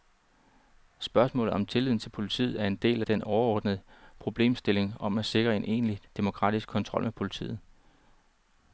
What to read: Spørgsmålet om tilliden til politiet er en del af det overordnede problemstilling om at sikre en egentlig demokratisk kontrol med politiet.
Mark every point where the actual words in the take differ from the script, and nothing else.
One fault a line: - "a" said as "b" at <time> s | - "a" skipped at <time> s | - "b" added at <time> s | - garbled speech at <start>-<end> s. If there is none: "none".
- "det" said as "den" at 3.0 s